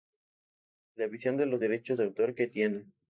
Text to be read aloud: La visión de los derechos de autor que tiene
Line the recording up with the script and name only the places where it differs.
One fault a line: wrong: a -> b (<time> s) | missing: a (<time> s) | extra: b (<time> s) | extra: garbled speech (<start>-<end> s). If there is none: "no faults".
no faults